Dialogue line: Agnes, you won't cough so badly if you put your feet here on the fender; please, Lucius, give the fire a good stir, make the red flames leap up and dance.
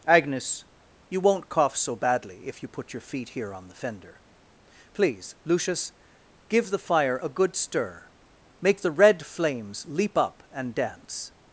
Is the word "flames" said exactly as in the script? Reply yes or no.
yes